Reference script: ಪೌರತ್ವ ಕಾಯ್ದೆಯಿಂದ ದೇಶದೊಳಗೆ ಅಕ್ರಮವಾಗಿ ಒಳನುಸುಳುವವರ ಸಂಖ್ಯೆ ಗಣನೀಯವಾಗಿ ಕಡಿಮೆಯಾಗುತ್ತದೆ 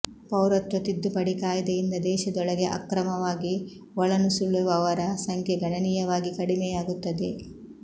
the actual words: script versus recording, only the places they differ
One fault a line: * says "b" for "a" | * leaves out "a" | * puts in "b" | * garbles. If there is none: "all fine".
* puts in "ತಿದ್ದುಪಡಿ"